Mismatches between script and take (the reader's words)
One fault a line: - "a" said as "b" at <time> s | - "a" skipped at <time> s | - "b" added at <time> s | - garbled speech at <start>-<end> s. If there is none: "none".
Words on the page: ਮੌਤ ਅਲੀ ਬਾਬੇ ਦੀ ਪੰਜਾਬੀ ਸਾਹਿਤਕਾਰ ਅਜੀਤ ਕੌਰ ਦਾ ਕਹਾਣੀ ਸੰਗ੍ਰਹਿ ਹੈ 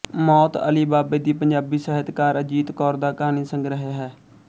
none